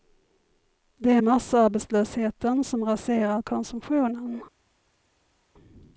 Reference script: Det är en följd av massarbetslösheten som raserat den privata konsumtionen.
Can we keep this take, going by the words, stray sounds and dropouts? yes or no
no